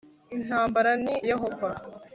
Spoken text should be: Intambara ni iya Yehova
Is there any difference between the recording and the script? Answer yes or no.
yes